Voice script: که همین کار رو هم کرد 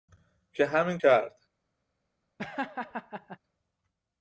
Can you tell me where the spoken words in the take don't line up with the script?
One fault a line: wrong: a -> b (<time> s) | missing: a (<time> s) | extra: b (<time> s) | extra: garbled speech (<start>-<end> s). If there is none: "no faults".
missing: کار رو هم (1.0 s)